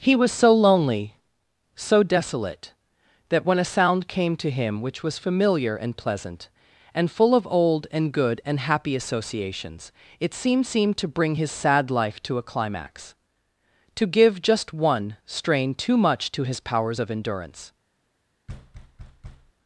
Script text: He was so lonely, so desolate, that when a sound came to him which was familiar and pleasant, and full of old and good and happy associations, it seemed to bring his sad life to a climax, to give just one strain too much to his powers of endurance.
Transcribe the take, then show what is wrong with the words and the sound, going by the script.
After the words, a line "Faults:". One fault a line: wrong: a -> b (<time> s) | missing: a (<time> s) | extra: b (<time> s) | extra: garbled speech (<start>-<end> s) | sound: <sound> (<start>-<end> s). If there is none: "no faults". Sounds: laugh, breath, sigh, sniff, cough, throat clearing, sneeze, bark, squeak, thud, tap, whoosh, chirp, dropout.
He was so lonely, so desolate, that when a sound came to him which was familiar and pleasant, and full of old and good and happy associations, it seemed seemed to bring his sad life to a climax, to give just one strain too much to his powers of endurance.
Faults:
extra: seemed (10.6 s)
sound: thud (18.5-19.5 s)